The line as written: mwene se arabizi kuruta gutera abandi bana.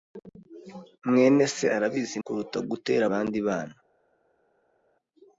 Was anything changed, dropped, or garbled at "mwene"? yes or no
no